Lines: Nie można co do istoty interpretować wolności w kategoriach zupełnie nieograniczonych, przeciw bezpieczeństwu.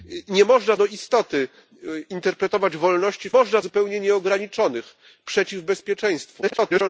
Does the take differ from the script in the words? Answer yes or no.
yes